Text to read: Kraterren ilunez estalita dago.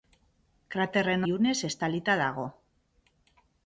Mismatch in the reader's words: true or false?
false